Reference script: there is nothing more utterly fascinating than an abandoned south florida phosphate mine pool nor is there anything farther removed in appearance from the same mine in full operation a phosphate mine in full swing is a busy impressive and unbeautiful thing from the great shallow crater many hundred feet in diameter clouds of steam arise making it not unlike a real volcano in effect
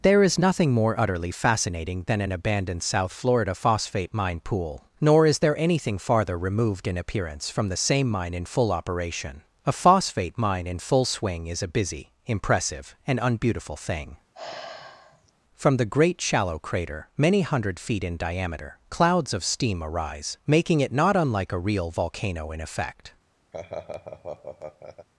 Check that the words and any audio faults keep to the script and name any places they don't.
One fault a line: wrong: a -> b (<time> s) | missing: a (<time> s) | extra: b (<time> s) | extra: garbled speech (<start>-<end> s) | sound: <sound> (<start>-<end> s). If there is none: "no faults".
sound: sigh (14.3-15.3 s)
sound: laugh (23.5-25.1 s)